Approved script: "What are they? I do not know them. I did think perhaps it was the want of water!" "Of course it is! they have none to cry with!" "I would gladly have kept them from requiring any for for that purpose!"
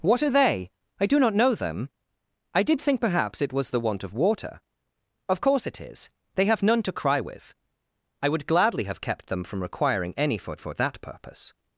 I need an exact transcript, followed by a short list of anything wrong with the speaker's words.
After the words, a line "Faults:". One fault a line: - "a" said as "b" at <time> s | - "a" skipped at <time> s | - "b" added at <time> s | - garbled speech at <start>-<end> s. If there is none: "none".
"What are they? I do not know them. I did think perhaps it was the want of water!" "Of course it is! they have none to cry with!" "I would gladly have kept them from requiring any for for that purpose!"
Faults:
none